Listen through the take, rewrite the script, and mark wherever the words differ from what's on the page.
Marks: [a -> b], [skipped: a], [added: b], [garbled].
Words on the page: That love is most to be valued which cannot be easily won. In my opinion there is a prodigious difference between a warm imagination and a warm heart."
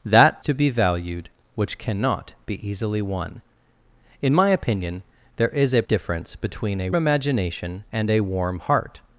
That [skipped: love is most] to be valued which cannot be easily won. In my opinion there is a [skipped: prodigious] difference between a [skipped: warm] imagination and a warm heart."